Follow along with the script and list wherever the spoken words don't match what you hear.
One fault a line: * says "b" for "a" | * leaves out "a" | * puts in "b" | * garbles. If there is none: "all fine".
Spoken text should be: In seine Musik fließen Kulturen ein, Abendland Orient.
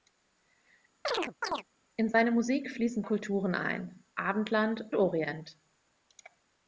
all fine